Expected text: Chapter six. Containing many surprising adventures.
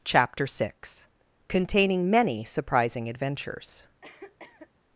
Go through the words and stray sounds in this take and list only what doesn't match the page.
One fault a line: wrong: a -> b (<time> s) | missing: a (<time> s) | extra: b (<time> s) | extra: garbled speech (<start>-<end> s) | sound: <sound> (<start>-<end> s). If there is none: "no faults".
sound: cough (4.0-4.7 s)